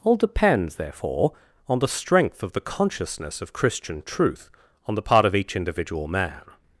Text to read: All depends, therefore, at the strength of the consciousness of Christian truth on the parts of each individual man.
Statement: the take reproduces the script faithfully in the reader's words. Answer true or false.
false